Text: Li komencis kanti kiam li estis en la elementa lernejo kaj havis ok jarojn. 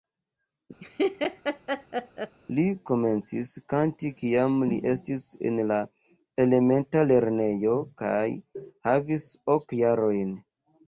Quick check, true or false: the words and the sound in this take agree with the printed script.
false